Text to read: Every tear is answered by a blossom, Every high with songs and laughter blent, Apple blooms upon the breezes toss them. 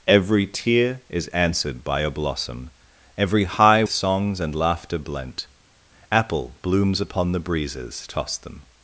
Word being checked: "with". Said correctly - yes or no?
no